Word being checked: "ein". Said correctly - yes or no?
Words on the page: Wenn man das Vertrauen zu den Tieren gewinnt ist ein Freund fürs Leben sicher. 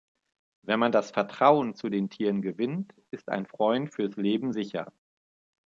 yes